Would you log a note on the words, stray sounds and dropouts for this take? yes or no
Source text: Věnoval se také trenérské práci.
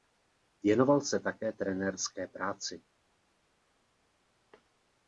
no